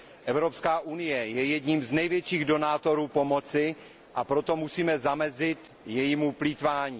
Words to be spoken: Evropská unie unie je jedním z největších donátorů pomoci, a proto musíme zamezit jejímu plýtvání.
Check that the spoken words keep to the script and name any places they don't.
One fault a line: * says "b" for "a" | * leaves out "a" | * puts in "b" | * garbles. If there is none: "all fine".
* leaves out "unie"